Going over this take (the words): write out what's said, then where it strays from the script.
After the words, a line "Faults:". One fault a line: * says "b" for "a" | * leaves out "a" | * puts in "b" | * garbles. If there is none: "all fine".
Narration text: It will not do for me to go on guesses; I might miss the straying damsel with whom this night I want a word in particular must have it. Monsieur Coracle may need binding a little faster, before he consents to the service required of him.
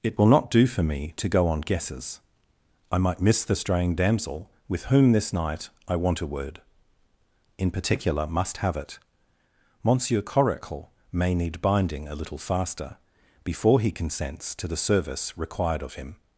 It will not do for me to go on guesses; I might miss the straying damsel with whom this night I want a word in particular must have it. Monsieur Coracle may need binding a little faster, before he consents to the service required of him.
Faults:
all fine